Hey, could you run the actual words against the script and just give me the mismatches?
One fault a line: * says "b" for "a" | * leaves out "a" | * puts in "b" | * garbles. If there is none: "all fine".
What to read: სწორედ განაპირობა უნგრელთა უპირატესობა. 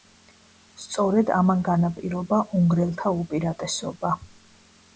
* puts in "ამან"